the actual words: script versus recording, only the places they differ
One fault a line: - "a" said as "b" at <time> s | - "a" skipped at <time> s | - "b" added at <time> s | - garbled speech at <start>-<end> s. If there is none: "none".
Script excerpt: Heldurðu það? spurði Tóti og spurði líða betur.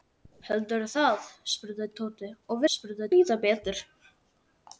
none